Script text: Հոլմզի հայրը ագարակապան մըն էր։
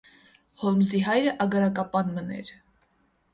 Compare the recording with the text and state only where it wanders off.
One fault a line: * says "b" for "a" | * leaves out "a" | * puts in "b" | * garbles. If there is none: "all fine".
all fine